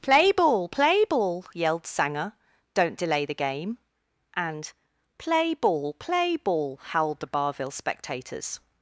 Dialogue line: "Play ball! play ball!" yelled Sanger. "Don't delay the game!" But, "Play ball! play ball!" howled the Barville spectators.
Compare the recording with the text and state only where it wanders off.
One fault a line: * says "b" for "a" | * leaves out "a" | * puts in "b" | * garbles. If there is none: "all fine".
* says "And" for "But"